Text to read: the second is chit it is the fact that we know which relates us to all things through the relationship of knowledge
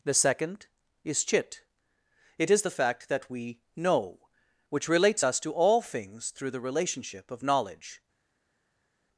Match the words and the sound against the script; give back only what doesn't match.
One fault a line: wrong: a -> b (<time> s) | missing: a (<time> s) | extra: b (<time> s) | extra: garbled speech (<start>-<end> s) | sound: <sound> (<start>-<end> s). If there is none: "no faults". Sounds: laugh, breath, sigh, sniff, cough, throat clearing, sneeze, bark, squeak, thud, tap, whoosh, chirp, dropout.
no faults